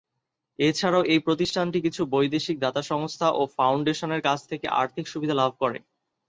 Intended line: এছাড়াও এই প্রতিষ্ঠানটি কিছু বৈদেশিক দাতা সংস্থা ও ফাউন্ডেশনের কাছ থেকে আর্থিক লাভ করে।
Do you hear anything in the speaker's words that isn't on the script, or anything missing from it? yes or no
yes